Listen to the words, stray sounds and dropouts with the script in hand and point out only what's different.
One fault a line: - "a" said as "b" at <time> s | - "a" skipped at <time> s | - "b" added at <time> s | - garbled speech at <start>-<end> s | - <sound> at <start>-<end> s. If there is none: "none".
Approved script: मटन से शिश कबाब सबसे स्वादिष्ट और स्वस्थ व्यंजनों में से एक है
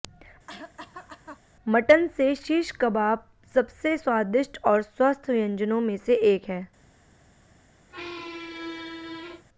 - cough at 0.5-1.4 s
- squeak at 7.9-9.4 s